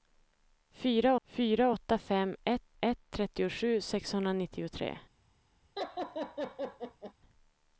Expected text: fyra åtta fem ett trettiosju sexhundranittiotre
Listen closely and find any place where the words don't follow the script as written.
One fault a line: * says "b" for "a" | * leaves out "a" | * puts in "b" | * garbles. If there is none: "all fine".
* puts in "fyra"
* puts in "ett"